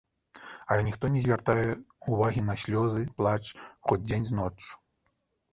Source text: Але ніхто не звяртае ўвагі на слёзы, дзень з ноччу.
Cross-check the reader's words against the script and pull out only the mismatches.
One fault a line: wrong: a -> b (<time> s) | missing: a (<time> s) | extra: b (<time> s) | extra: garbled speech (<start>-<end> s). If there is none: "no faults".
extra: плач хоць (3.2 s)